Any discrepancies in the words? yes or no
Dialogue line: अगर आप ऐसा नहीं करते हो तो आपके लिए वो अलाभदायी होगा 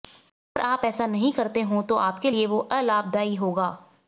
no